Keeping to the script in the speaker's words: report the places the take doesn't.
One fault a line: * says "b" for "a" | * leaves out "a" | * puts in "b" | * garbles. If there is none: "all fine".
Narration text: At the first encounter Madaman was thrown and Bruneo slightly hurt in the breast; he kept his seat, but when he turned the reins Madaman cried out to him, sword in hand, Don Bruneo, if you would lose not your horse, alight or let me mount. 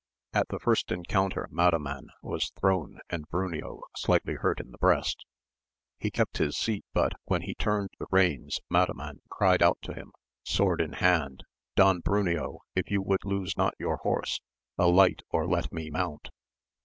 all fine